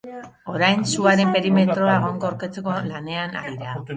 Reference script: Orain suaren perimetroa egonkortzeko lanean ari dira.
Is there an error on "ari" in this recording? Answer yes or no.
yes